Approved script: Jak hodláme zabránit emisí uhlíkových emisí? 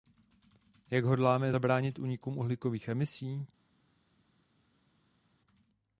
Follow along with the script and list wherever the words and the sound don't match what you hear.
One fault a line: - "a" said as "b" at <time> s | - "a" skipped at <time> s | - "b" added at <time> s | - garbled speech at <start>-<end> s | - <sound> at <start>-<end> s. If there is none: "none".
- "emisí" said as "únikům" at 2.0 s